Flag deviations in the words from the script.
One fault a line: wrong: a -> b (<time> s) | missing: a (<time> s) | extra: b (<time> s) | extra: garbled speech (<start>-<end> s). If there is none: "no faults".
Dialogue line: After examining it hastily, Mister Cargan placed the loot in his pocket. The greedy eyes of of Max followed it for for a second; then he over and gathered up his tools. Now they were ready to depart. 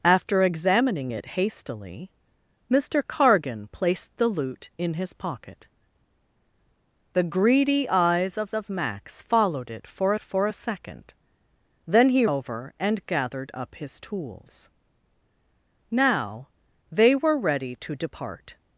no faults